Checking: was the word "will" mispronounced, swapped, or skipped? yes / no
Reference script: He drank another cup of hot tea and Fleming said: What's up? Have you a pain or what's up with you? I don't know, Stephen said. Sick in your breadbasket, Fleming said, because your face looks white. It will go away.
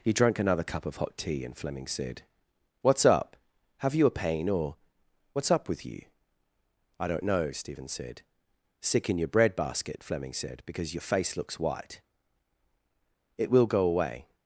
no